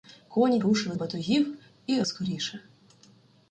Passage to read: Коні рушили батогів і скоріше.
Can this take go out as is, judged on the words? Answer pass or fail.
pass